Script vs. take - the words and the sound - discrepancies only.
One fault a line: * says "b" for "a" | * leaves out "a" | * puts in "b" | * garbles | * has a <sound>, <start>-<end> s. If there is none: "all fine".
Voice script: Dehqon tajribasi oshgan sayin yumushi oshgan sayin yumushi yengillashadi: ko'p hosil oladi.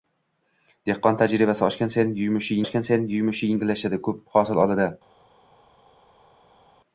all fine